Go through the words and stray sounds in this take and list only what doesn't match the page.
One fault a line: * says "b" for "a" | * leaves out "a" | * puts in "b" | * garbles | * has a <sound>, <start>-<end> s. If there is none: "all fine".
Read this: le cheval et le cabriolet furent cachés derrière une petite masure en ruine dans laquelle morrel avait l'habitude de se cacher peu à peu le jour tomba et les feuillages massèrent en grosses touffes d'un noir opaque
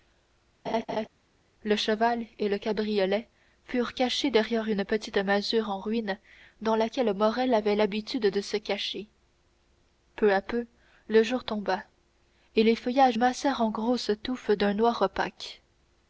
* has a laugh, 0.6-1.1 s